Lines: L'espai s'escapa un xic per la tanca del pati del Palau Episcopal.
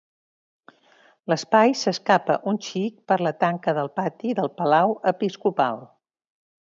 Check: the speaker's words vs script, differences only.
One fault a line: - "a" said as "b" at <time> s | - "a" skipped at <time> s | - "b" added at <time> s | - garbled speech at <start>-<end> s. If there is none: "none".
none